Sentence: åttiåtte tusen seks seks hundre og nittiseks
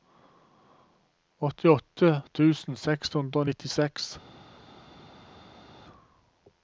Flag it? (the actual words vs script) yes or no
yes